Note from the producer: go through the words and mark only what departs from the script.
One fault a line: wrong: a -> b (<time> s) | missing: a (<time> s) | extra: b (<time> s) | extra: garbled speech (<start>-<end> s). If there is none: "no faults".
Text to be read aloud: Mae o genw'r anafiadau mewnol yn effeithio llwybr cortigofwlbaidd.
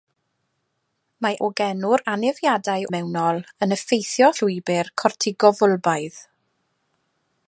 no faults